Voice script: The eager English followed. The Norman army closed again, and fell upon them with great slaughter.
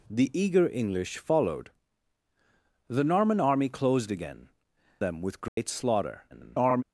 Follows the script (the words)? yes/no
no